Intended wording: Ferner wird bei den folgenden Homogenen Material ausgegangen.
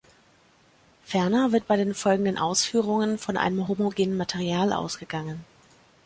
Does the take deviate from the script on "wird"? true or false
false